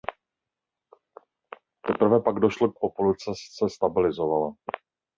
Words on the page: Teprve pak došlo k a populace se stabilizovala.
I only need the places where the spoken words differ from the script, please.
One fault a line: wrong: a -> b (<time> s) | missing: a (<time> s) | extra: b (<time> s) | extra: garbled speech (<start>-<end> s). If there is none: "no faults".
no faults